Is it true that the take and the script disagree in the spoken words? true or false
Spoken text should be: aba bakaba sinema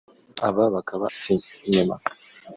false